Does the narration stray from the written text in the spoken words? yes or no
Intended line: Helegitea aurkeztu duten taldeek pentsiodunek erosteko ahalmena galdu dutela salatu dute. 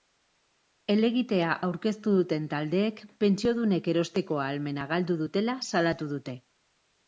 no